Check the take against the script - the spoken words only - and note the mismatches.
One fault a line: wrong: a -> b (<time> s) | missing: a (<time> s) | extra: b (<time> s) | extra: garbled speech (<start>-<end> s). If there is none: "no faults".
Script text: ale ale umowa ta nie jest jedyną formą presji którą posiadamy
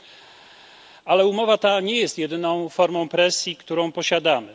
missing: ale (1.3 s)